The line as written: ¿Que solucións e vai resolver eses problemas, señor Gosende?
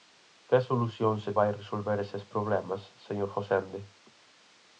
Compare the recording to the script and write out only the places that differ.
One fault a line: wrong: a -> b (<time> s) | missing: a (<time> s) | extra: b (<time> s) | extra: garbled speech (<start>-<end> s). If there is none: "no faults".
no faults